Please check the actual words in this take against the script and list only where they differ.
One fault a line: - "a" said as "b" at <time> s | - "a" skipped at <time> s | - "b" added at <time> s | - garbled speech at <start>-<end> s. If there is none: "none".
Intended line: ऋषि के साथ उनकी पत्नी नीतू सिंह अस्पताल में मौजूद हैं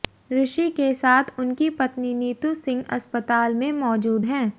none